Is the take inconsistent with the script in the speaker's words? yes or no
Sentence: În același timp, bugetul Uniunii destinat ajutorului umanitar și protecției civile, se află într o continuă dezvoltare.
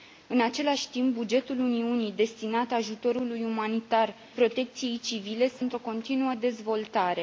yes